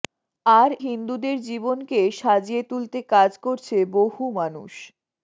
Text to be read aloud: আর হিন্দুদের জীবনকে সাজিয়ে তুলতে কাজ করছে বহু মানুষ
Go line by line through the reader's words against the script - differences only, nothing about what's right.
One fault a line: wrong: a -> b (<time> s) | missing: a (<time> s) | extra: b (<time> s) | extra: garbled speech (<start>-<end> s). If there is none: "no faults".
no faults